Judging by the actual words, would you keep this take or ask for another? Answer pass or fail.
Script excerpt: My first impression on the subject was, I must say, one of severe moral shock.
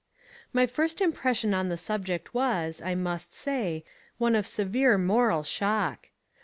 pass